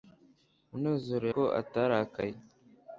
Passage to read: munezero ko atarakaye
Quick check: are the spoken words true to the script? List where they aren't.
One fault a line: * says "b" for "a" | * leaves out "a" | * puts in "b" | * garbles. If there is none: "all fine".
all fine